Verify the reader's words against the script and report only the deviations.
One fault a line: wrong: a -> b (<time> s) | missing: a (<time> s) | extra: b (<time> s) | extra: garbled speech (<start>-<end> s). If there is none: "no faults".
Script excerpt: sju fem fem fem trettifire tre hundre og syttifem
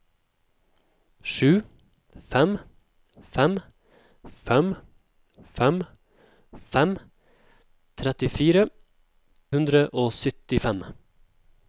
extra: fem fem (5.6 s)
missing: tre (8.7 s)